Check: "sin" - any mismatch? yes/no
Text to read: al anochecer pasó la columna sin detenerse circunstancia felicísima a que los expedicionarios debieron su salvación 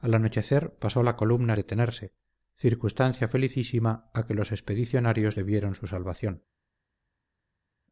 yes